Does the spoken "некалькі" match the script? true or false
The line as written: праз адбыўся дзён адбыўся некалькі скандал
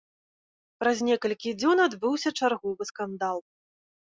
false